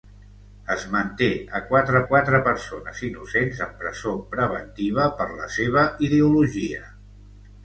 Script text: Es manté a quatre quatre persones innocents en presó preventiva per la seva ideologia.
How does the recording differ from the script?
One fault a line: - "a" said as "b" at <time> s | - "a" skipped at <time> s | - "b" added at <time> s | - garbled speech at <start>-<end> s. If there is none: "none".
none